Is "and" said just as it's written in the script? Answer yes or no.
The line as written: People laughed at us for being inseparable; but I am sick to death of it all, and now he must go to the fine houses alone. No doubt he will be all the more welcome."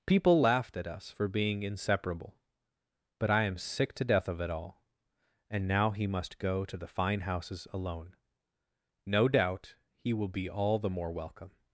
yes